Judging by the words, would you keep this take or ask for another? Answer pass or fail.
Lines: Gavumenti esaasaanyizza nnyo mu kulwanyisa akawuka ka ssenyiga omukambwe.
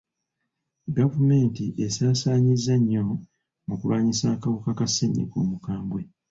pass